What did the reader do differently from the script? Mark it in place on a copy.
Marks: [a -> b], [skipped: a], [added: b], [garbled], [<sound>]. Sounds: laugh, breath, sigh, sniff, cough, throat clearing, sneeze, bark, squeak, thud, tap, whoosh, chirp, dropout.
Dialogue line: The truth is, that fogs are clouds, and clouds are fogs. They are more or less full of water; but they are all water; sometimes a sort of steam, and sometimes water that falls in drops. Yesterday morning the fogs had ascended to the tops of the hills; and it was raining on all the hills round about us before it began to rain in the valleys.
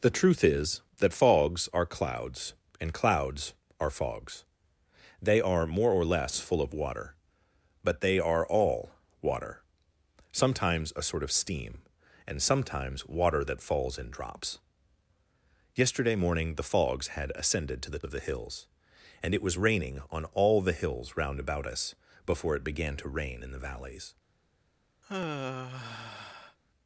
The truth is, that fogs are clouds, and clouds are fogs. They are more or less full of water; but they are all water; sometimes a sort of steam, and sometimes water that falls in drops. Yesterday morning the fogs had ascended to the [skipped: tops] of the hills; and it was raining on all the hills round about us before it began to rain in the valleys. [sigh]